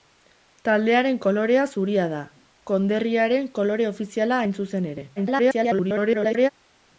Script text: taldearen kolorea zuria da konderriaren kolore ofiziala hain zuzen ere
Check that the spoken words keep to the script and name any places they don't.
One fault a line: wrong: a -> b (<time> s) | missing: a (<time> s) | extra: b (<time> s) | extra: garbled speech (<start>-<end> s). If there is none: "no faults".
extra: garbled speech (5.2-6.5 s)